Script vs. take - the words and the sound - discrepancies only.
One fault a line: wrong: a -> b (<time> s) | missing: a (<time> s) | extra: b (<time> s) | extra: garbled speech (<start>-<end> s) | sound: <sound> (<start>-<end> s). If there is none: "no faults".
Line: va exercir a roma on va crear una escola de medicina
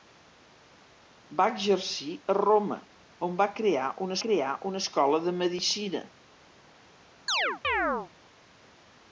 extra: crear una (4.3 s)
sound: chirp (7.3-8.1 s)